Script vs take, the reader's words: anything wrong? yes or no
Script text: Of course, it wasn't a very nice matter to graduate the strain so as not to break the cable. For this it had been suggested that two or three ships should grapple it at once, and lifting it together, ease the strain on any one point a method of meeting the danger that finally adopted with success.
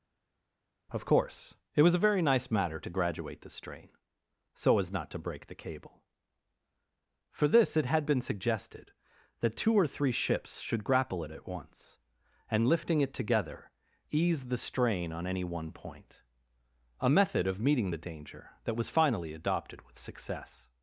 yes